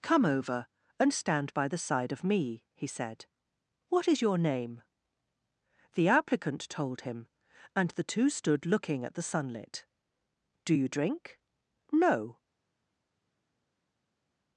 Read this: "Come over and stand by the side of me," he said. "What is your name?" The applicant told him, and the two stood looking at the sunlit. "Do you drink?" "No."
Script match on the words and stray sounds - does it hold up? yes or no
yes